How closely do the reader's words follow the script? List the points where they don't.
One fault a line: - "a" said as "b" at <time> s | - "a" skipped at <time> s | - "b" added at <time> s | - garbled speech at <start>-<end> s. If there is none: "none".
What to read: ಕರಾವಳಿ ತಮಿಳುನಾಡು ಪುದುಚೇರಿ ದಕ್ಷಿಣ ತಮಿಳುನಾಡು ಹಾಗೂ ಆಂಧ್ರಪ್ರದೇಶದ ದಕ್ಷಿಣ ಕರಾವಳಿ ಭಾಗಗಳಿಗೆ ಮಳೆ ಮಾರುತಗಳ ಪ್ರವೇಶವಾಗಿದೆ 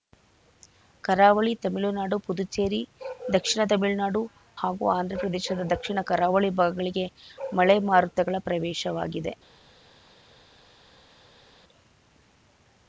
none